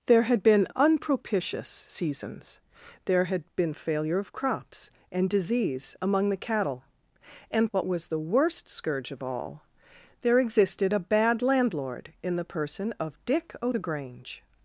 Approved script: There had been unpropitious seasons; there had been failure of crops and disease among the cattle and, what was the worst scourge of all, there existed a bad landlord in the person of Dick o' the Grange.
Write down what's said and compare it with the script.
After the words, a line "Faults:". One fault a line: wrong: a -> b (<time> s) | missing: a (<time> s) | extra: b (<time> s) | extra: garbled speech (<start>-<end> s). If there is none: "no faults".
There had been unpropitious seasons; there had been failure of crops and disease among the cattle and, what was the worst scourge of all, there existed a bad landlord in the person of Dick o' the Grange.
Faults:
no faults